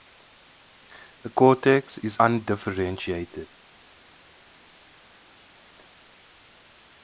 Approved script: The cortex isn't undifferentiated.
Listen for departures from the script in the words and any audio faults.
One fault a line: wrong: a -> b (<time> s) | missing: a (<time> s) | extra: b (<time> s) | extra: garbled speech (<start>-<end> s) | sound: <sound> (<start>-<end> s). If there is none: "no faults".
wrong: isn't -> is (2.0 s)